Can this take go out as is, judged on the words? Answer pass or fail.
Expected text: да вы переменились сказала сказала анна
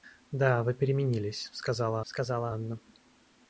pass